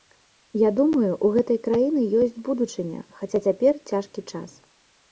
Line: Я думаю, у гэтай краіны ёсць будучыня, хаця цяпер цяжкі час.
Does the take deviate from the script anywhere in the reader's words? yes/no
no